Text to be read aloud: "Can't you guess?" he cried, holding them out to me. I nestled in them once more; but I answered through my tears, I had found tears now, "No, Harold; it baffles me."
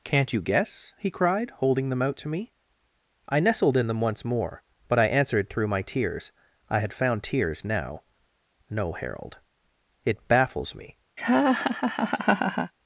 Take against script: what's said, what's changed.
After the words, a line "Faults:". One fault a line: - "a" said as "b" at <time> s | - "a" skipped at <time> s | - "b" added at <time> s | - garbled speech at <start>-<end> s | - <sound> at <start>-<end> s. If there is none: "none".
"Can't you guess?" he cried, holding them out to me. I nestled in them once more; but I answered through my tears, I had found tears now, "No, Harold; it baffles me."
Faults:
- laugh at 11.2-12.7 s